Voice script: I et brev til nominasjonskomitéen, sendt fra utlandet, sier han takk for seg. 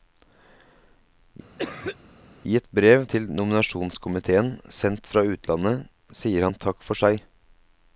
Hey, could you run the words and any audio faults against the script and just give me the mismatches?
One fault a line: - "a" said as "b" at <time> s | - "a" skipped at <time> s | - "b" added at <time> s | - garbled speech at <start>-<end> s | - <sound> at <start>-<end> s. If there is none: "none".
- cough at 1.6-2.0 s